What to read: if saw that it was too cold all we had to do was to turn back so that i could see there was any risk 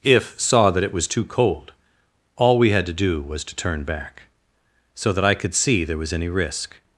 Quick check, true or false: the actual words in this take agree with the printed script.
true